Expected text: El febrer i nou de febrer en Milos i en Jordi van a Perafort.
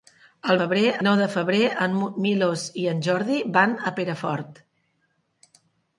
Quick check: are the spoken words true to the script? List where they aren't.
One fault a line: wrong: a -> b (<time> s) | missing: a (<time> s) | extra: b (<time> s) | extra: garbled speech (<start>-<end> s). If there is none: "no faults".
no faults